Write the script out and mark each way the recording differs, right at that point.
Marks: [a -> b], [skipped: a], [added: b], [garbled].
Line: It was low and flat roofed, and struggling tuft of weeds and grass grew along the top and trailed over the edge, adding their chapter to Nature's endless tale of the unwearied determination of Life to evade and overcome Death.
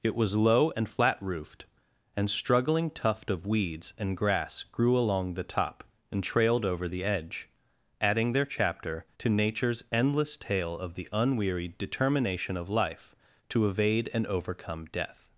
It was low and flat roofed, and struggling tuft of weeds and grass grew along the top and trailed over the edge, adding their chapter to Nature's endless tale of the unwearied determination of Life to evade and overcome Death.